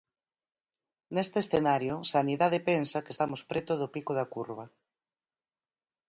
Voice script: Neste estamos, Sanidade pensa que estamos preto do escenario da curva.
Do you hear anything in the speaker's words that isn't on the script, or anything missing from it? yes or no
yes